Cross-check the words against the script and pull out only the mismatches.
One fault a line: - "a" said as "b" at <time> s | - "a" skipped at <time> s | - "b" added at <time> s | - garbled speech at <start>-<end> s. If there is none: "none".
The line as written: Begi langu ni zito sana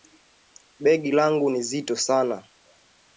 none